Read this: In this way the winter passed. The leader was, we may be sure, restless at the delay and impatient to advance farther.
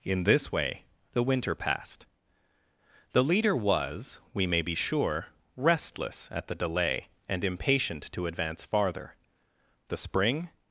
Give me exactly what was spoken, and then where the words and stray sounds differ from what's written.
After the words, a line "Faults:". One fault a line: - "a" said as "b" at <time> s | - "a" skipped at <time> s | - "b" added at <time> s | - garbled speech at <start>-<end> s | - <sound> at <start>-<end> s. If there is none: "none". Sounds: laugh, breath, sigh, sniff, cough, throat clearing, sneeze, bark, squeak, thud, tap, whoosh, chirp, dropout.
In this way the winter passed. The leader was, we may be sure, restless at the delay and impatient to advance farther. The spring
Faults:
- "The spring" added at 9.9 s